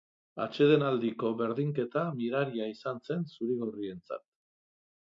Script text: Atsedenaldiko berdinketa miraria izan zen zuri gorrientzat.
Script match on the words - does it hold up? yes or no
yes